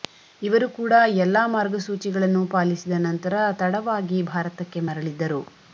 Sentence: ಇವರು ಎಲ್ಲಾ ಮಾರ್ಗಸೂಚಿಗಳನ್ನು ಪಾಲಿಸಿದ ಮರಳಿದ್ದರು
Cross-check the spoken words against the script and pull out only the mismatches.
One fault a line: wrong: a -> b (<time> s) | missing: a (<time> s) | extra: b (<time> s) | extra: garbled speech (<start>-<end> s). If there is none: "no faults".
extra: ಕೂಡ (0.8 s)
extra: ನಂತರ ತಡವಾಗಿ ಭಾರತಕ್ಕೆ (3.0 s)